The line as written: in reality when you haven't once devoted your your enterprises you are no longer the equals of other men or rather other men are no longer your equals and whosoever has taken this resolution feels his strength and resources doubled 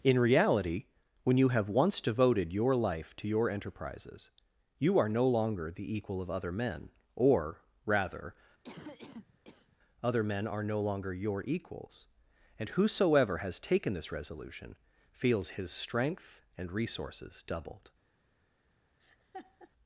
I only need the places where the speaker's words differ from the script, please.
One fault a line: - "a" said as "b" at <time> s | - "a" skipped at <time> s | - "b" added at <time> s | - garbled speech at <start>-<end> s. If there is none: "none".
- "haven't" said as "have" at 1.5 s
- "life to" added at 2.8 s
- "equals" said as "equal" at 6.0 s